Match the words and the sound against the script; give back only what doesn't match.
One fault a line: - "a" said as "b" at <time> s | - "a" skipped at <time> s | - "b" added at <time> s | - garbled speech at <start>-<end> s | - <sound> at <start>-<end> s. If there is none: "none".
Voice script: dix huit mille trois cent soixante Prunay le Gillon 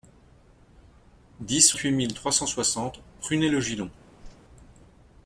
- whoosh at 4.2-4.4 s